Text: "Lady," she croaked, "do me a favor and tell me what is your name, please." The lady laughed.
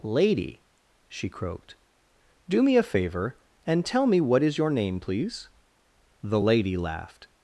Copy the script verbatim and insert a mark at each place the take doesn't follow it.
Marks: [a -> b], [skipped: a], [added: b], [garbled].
"Lady," she croaked, "do me a favor and tell me what is your name, please." The lady laughed.